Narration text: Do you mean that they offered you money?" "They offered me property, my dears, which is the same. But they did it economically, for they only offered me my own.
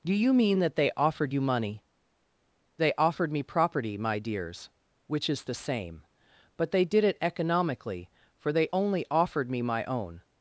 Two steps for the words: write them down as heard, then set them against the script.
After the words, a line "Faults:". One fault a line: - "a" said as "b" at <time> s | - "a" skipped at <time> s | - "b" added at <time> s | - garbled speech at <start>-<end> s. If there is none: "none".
Do you mean that they offered you money?" "They offered me property, my dears, which is the same. But they did it economically, for they only offered me my own.
Faults:
none